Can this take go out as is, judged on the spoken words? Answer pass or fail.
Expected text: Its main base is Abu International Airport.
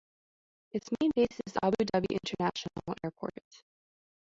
fail